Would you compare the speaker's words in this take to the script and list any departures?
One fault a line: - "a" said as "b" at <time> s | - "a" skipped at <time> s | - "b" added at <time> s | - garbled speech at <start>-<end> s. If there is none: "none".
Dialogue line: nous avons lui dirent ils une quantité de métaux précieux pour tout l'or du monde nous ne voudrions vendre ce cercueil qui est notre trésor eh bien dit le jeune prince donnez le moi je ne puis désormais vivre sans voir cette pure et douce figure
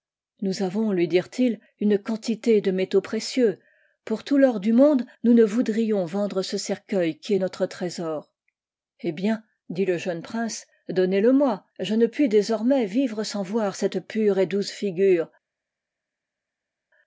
none